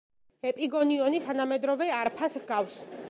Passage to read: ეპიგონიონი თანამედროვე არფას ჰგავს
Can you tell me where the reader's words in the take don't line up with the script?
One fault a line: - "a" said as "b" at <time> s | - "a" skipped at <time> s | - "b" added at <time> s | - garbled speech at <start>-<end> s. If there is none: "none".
none